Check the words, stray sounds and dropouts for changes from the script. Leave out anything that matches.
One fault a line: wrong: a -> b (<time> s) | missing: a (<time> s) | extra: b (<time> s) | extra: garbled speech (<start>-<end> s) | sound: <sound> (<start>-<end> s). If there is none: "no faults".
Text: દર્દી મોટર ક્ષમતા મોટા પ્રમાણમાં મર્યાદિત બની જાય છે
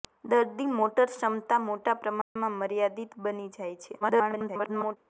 sound: dropout (2.2-2.4 s)
extra: garbled speech (4.0-5.0 s)